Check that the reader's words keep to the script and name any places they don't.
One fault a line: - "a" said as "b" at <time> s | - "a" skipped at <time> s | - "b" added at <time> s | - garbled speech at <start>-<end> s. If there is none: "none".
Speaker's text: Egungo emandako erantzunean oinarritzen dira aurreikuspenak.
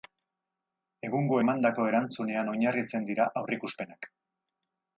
none